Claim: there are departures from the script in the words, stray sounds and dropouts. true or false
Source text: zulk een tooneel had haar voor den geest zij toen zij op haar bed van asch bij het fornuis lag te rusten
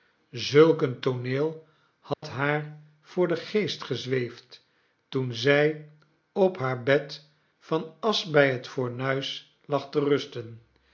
true